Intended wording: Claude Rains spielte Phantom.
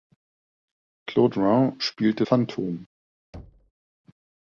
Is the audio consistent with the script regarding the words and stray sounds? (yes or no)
no